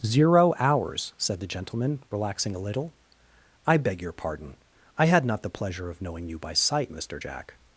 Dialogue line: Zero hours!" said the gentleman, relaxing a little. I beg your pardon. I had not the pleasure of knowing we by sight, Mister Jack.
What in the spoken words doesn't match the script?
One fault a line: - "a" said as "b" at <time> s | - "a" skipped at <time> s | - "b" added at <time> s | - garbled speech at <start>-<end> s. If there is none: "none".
- "we" said as "you" at 6.3 s